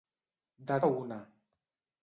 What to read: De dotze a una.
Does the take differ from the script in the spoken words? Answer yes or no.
yes